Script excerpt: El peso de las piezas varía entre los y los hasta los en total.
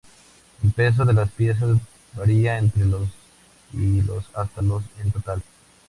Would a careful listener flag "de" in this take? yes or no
no